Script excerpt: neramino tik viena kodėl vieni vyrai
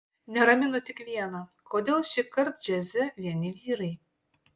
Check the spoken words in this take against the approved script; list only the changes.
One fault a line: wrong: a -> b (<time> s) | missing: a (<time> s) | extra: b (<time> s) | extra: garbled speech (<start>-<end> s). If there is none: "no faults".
extra: šįkart džiaze (2.1 s)